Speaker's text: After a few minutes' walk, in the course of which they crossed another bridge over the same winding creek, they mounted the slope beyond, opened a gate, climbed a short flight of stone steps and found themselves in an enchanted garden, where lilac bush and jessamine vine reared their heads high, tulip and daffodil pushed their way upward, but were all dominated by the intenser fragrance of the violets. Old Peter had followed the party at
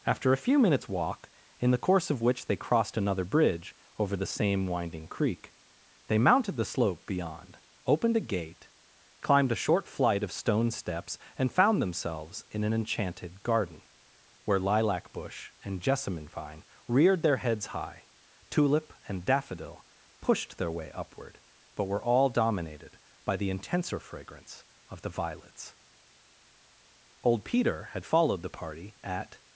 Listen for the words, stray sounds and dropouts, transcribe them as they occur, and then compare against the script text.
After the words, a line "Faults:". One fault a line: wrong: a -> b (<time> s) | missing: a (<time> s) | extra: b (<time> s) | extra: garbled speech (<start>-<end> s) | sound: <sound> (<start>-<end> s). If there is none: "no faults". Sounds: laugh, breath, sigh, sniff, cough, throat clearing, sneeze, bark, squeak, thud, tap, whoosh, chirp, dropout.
After a few minutes' walk, in the course of which they crossed another bridge over the same winding creek, they mounted the slope beyond, opened a gate, climbed a short flight of stone steps and found themselves in an enchanted garden, where lilac bush and jessamine vine reared their heads high, tulip and daffodil pushed their way upward, but were all dominated by the intenser fragrance of the violets. Old Peter had followed the party at
Faults:
no faults